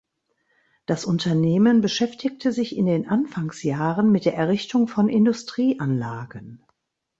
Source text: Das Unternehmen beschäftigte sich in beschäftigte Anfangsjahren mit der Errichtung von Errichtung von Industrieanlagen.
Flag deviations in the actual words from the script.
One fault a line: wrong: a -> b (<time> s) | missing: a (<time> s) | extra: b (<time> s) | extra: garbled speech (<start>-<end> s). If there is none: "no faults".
wrong: beschäftigte -> den (2.8 s)
missing: Errichtung von (5.1 s)